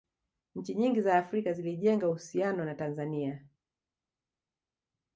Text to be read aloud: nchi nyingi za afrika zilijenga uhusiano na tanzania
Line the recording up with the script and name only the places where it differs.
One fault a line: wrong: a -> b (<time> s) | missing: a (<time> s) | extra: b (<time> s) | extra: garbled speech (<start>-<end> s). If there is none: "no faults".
no faults